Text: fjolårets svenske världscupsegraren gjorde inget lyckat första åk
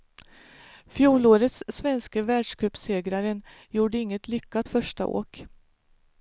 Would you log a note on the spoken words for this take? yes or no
no